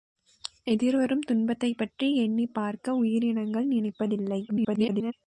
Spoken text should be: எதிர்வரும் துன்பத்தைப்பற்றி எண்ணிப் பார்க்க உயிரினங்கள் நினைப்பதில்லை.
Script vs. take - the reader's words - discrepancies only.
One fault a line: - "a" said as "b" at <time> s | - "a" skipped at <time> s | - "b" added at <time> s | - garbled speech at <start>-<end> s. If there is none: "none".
- garbled speech at 4.5-5.1 s